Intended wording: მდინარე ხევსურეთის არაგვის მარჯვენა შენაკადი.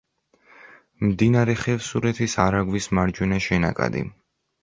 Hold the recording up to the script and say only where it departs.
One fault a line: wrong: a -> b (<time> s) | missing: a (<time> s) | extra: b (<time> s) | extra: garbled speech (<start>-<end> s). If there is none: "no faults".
no faults